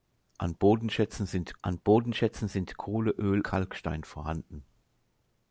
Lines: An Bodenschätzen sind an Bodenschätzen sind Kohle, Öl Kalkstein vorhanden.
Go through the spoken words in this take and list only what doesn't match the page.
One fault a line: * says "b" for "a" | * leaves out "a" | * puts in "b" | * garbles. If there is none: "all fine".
all fine